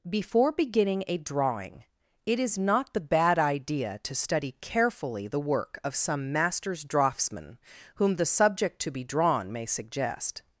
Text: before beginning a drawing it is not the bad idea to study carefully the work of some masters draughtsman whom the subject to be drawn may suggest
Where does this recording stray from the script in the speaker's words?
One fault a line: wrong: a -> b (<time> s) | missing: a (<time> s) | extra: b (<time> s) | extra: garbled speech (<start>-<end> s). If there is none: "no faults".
no faults